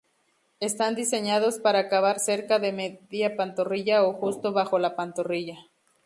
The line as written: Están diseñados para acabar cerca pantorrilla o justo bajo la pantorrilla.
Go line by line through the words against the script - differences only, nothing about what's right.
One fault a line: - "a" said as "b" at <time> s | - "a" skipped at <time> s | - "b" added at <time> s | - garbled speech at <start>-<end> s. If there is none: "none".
- "de media" added at 2.6 s